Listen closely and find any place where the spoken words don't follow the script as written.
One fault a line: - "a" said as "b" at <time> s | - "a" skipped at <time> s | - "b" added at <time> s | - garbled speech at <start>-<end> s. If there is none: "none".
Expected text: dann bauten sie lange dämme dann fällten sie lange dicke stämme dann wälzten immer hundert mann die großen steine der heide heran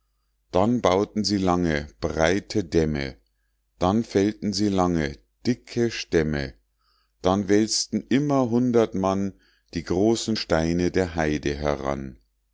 - "breite" added at 2.0 s